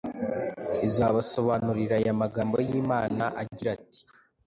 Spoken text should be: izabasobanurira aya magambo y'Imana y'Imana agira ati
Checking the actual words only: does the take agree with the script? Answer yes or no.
no